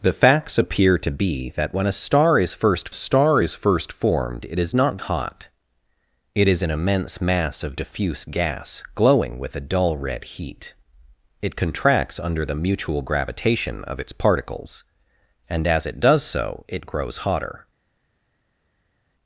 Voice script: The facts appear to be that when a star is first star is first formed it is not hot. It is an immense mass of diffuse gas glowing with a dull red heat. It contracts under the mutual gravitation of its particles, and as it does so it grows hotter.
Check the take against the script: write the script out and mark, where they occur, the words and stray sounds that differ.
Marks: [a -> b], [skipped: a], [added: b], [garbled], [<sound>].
The facts appear to be that when a star is first star is first formed it is not hot. It is an immense mass of diffuse gas glowing with a dull red heat. It contracts under the mutual gravitation of its particles, and as it does so it grows hotter.